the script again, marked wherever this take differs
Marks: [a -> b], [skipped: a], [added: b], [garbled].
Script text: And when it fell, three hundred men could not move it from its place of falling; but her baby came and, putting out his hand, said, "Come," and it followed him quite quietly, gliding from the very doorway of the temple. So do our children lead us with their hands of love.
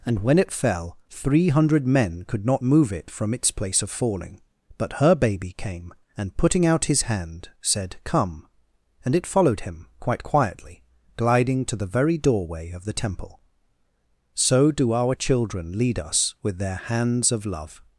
And when it fell, three hundred men could not move it from its place of falling; but her baby came and, putting out his hand, said, "Come," and it followed him quite quietly, gliding [from -> to] the very doorway of the temple. So do our children lead us with their hands of love.